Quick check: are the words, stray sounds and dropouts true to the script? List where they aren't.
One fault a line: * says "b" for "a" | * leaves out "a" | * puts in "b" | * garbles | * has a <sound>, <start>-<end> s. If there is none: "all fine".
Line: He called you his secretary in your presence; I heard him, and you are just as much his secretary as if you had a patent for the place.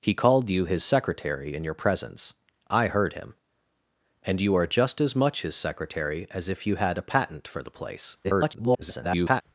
* garbles